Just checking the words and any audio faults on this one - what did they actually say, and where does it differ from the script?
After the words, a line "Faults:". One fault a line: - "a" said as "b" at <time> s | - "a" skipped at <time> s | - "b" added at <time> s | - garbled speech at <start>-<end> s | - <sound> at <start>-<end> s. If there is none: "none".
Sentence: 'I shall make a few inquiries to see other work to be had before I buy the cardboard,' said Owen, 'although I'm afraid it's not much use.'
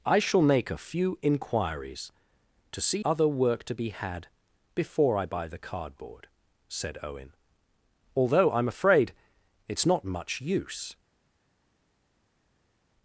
'I shall make a few inquiries to see other work to be had before I buy the cardboard,' said Owen, 'although I'm afraid it's not much use.'
Faults:
none